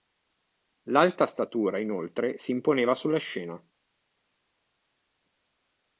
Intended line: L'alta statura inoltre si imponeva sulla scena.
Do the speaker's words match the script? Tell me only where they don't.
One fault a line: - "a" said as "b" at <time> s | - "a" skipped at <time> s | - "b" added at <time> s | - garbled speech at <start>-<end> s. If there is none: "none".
none